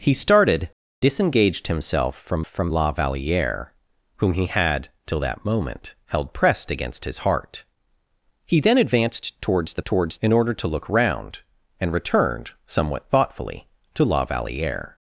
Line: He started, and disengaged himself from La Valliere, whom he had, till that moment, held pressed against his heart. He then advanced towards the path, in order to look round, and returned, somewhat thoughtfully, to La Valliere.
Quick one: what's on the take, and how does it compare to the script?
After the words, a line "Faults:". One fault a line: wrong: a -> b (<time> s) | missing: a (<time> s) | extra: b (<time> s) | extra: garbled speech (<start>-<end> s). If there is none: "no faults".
He started, disengaged himself from from La Valliere, whom he had, till that moment, held pressed against his heart. He then advanced towards the towards, in order to look round, and returned, somewhat thoughtfully, to La Valliere.
Faults:
missing: and (0.7 s)
extra: from (2.5 s)
wrong: path -> towards (9.8 s)